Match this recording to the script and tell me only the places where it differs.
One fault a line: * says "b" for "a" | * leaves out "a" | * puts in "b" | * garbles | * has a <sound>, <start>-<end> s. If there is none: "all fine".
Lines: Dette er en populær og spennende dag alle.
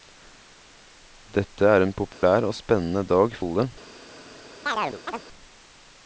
* has a dropout, 2.1-2.2 s
* has a chirp, 4.7-5.2 s